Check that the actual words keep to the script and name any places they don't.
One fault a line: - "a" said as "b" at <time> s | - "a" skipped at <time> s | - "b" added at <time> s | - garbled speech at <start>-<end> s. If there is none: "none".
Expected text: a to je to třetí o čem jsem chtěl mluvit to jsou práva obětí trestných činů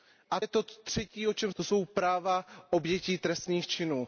- "to" skipped at 0.4 s
- "jsem chtěl mluvit" skipped at 1.5 s